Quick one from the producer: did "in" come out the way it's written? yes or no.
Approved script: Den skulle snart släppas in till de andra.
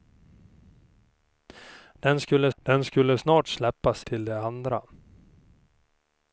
no